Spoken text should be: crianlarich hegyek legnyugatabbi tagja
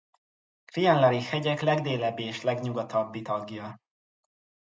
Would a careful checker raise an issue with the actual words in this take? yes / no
yes